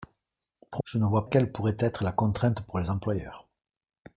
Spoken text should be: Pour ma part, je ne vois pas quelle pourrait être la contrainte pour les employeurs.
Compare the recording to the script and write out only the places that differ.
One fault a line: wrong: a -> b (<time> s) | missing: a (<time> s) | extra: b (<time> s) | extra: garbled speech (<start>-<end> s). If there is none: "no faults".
missing: ma part (0.8 s)
missing: pas (1.2 s)